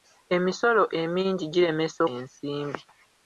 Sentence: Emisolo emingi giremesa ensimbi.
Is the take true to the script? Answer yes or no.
yes